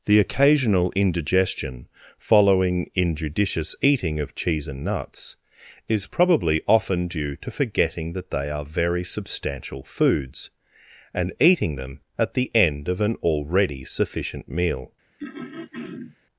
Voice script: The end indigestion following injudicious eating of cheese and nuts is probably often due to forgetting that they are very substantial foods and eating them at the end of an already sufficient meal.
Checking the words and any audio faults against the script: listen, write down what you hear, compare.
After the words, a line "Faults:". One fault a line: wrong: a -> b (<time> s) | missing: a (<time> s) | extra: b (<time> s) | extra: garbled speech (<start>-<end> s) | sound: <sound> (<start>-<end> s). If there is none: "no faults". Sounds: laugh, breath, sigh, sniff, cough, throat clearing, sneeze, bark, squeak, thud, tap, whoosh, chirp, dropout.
The occasional indigestion following injudicious eating of cheese and nuts is probably often due to forgetting that they are very substantial foods and eating them at the end of an already sufficient meal.
Faults:
wrong: end -> occasional (0.2 s)
sound: throat clearing (15.2-16.2 s)